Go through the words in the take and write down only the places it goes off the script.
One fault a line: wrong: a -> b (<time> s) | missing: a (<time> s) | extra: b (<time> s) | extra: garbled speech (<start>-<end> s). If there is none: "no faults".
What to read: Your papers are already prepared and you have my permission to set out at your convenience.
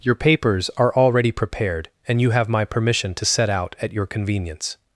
no faults